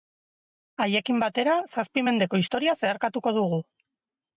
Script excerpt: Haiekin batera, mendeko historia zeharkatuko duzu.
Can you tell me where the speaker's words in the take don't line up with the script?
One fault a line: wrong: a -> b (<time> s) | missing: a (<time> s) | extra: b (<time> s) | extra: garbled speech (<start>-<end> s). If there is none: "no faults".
extra: zazpi (1.7 s)
wrong: duzu -> dugu (3.4 s)